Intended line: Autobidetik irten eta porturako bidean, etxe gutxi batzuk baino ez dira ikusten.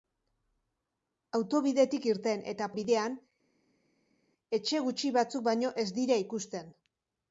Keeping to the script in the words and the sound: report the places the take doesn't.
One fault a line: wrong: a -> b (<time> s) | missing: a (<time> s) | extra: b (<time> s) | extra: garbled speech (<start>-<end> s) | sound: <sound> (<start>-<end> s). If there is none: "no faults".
missing: porturako (2.7 s)